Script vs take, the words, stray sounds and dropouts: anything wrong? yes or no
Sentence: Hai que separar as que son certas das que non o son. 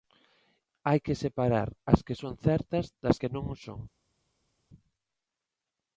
no